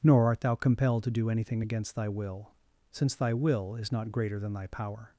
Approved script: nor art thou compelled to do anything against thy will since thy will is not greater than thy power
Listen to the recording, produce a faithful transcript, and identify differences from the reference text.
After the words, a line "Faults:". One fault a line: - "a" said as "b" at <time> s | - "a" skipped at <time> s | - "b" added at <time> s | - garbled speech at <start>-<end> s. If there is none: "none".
nor art thou compelled to do anything against thy will since thy will is not greater than thy power
Faults:
none